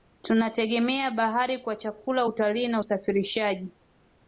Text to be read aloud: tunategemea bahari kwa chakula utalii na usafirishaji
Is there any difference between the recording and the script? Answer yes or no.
no